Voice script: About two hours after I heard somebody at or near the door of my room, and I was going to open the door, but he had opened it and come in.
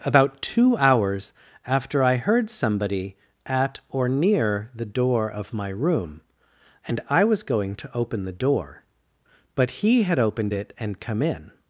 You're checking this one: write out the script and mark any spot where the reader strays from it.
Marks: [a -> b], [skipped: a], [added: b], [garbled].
About two hours after I heard somebody at or near the door of my room, and I was going to open the door, but he had opened it and come in.